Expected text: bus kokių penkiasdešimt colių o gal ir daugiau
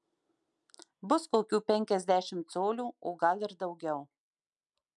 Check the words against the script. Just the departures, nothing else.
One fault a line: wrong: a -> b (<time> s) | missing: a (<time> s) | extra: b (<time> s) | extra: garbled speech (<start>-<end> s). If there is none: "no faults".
no faults